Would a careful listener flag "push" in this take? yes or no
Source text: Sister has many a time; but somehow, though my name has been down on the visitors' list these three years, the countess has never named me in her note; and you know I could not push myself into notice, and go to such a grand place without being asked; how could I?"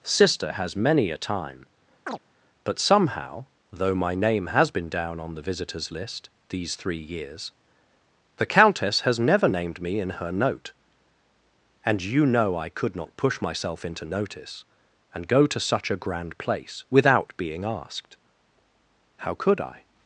no